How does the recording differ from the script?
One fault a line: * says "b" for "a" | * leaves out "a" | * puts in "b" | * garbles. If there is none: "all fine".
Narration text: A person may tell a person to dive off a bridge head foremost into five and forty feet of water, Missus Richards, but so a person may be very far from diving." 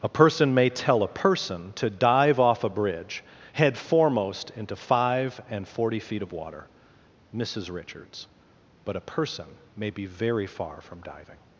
* leaves out "so"